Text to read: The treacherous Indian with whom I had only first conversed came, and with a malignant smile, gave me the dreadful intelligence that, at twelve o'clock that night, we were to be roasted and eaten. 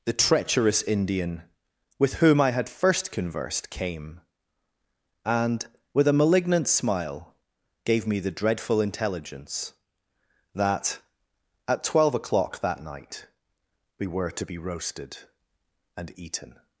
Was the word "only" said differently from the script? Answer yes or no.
yes